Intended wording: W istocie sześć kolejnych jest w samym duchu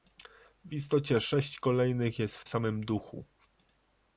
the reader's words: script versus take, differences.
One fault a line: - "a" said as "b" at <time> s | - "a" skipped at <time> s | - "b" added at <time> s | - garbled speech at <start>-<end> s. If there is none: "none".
none